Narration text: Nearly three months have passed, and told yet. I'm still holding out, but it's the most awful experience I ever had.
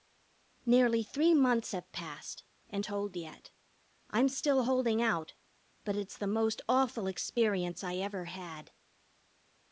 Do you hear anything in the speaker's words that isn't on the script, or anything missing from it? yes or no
no